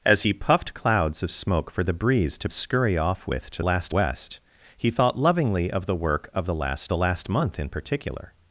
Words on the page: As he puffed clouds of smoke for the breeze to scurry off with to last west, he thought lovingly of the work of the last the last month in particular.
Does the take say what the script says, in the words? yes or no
yes